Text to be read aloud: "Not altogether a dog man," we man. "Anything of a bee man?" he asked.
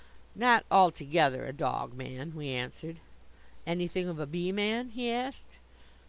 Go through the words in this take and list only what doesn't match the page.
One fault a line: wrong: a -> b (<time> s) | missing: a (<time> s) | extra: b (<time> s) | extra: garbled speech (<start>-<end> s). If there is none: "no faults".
wrong: man -> answered (2.5 s)